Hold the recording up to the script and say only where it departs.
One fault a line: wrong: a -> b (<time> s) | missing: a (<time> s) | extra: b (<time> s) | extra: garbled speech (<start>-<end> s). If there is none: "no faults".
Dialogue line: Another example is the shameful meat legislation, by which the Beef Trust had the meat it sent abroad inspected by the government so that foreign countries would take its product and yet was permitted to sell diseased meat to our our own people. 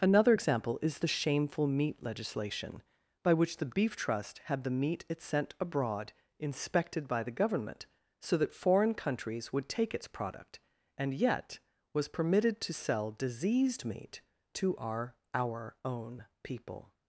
no faults